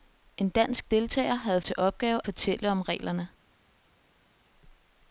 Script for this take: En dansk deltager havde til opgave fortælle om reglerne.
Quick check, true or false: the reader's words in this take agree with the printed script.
true